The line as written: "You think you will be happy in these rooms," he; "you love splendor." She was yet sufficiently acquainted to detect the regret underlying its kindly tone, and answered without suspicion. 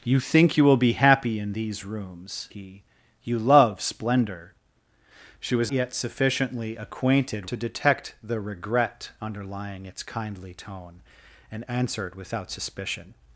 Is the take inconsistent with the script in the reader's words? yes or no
no